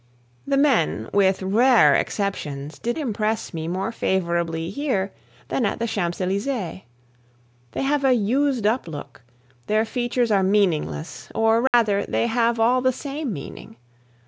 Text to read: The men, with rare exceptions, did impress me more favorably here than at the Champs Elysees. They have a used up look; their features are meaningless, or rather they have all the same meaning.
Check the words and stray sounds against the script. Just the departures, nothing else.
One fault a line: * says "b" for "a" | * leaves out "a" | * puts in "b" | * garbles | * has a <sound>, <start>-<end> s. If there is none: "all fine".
* has a dropout, 11.7-11.7 s